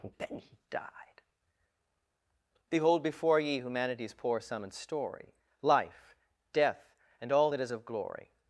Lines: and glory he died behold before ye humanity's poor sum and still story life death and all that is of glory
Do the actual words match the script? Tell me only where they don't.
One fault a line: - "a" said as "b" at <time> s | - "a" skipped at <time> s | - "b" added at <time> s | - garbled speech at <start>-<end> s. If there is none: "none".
- "glory" said as "then" at 0.2 s
- "still" skipped at 4.7 s